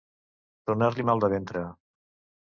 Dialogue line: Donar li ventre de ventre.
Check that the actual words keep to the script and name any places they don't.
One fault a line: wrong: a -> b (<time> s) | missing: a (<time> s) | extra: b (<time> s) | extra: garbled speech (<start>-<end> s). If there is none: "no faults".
wrong: ventre -> mal (1.1 s)